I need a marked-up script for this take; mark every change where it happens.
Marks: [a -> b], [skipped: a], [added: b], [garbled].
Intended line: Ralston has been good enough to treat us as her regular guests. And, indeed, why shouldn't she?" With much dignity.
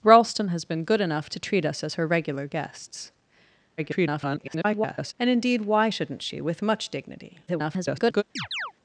Ralston has been good enough to treat us as her regular guests. [garbled] And, indeed, why shouldn't she?" With much dignity. [garbled]